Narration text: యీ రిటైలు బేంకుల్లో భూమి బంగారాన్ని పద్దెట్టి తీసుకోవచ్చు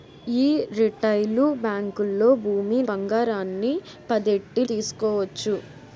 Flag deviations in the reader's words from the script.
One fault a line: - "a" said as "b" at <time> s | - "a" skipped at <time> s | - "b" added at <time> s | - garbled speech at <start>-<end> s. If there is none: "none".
none